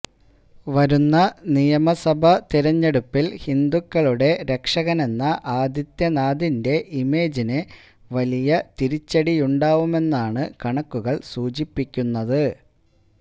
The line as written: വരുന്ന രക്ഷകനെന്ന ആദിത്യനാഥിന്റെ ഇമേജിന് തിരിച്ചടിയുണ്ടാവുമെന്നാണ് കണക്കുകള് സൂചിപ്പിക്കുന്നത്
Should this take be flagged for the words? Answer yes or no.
yes